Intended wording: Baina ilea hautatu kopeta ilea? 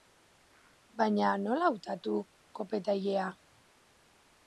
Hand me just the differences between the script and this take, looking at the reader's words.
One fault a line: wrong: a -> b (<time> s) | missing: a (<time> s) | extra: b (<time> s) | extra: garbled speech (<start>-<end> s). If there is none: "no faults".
wrong: ilea -> nola (1.4 s)